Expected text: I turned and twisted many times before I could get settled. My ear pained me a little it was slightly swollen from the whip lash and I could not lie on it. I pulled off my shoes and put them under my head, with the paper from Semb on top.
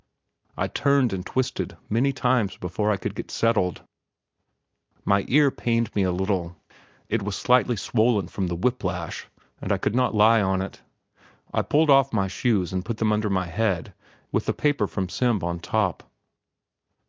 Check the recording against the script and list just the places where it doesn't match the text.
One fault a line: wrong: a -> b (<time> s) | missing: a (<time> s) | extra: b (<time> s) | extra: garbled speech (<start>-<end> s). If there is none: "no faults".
no faults